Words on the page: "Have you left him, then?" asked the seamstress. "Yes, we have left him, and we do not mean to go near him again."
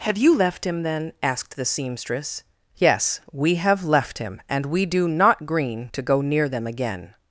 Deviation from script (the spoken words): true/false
true